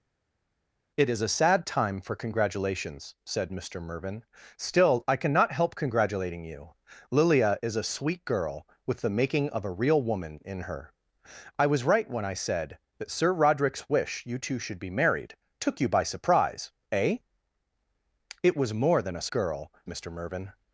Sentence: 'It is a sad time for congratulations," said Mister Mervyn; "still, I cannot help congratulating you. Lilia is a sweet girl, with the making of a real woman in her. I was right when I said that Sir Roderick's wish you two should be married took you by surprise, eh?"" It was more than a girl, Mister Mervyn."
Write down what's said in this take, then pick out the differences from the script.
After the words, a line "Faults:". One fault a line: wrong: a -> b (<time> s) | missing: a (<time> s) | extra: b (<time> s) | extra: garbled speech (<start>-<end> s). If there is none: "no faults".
'It is a sad time for congratulations," said Mister Mervyn; "still, I cannot help congratulating you. Lilia is a sweet girl, with the making of a real woman in her. I was right when I said that Sir Roderick's wish you two should be married took you by surprise, eh?"" It was more than a girl, Mister Mervyn."
Faults:
no faults